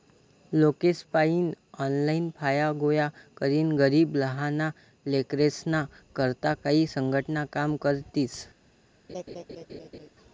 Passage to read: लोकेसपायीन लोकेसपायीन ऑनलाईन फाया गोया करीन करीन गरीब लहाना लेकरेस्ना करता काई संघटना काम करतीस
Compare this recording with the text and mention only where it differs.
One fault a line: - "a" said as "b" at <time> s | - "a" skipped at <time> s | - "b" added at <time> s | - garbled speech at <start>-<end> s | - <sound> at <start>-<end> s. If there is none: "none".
- "लोकेसपायीन" skipped at 1.5 s
- "करीन" skipped at 3.8 s
- laugh at 9.1-10.1 s